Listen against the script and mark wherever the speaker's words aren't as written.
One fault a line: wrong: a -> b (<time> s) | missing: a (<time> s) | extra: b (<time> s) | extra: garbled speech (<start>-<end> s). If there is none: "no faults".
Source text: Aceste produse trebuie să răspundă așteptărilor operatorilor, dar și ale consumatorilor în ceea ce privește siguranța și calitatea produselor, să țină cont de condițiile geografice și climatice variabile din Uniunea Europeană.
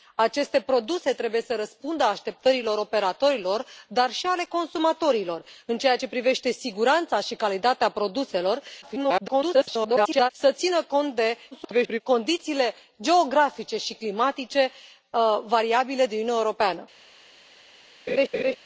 extra: garbled speech (8.8-10.3 s)
extra: garbled speech (11.5-12.0 s)